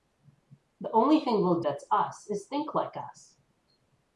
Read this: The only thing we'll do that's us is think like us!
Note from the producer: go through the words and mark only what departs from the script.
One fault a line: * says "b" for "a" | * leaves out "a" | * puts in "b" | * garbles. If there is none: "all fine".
* leaves out "do"